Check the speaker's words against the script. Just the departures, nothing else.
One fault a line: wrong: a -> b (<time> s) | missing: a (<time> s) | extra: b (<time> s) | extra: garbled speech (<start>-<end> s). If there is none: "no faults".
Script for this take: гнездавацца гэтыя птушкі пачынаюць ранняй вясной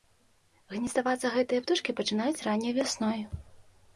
no faults